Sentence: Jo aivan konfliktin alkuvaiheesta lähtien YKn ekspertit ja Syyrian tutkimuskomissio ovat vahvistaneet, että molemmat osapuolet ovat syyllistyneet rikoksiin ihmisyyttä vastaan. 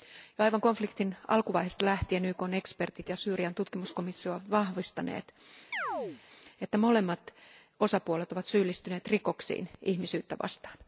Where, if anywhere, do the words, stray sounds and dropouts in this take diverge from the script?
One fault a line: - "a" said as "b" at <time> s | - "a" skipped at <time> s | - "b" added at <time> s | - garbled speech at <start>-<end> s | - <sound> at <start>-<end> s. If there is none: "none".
- chirp at 5.7-6.2 s